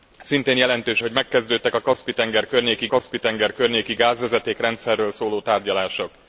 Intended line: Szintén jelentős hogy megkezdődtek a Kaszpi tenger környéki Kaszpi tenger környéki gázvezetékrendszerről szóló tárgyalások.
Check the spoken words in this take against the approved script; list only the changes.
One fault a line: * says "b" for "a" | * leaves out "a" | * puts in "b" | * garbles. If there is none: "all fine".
all fine